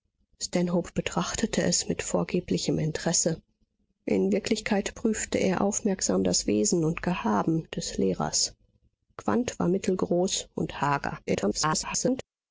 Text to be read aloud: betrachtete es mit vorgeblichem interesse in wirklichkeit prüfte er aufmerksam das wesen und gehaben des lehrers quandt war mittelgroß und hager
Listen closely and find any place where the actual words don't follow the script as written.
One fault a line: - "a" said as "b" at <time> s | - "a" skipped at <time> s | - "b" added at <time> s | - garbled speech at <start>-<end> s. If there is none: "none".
- garbled speech at 11.3-12.2 s